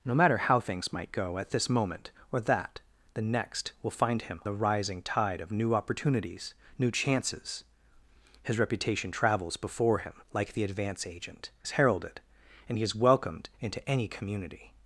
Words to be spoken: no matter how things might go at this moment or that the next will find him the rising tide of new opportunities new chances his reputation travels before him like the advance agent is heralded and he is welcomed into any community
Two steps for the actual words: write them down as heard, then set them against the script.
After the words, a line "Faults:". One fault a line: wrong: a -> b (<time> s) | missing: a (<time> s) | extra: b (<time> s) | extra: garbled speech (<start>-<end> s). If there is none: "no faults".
no matter how things might go at this moment or that the next will find him the rising tide of new opportunities new chances his reputation travels before him like the advance agent is heralded and he is welcomed into any community
Faults:
no faults